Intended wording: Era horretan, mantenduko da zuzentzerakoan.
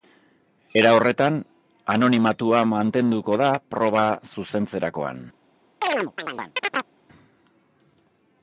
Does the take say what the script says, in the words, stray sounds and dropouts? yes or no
no